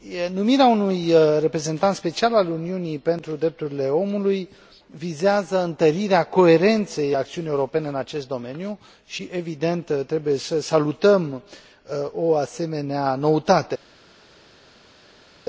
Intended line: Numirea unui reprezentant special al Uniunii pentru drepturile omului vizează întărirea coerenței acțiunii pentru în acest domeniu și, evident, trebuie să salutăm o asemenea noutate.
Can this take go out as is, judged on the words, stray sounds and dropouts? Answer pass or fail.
fail